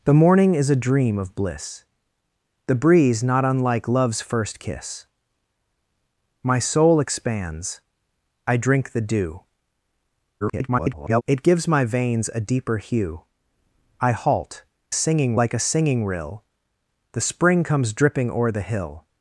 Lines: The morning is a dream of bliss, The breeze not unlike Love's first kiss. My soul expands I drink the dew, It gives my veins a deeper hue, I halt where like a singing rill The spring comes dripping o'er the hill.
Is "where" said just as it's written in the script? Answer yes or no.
no